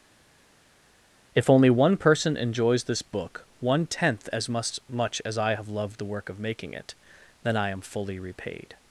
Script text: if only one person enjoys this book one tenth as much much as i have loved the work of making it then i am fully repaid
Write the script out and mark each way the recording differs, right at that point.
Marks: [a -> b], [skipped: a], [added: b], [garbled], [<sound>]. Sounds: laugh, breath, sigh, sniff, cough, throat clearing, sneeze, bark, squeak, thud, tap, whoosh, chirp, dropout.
if only one person enjoys this book one tenth as much much as i have loved the work of making it then i am fully repaid